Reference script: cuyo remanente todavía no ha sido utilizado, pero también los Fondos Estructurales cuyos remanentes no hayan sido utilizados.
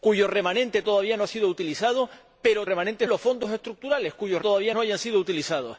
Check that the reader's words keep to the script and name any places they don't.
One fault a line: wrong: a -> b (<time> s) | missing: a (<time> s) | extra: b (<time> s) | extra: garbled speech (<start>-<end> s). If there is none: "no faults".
wrong: también -> remanentes (2.6 s)
wrong: remanentes -> todavía (4.4 s)